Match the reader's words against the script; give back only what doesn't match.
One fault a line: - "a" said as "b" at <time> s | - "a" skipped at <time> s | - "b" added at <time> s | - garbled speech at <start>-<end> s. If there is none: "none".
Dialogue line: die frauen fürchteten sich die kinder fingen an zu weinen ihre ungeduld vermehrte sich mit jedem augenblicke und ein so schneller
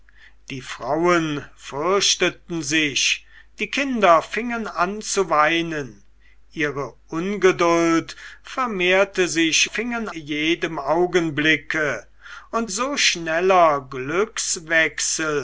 - "mit" said as "fingen" at 9.6 s
- "ein" skipped at 12.7 s